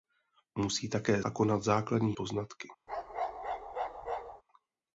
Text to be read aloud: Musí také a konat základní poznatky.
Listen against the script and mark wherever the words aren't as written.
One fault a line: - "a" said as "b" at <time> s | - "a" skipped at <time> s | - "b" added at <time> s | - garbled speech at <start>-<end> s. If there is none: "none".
none